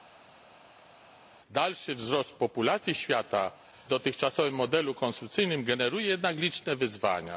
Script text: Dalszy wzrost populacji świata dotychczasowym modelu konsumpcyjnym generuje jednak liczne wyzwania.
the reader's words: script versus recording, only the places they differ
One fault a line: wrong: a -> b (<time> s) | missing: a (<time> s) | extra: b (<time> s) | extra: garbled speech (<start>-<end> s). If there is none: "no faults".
no faults